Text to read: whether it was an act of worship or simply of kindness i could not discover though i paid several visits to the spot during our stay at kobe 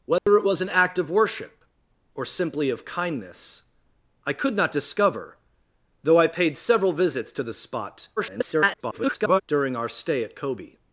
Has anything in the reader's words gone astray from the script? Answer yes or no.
yes